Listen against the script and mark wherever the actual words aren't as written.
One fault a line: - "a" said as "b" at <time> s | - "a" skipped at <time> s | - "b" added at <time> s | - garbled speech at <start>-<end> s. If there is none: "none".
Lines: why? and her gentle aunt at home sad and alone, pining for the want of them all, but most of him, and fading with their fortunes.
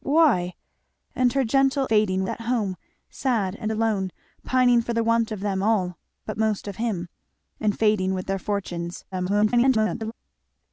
- "aunt" said as "fading" at 1.9 s
- garbled speech at 9.1-10.1 s